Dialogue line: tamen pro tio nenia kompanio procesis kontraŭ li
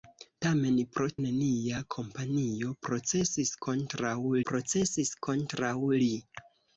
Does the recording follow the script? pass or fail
fail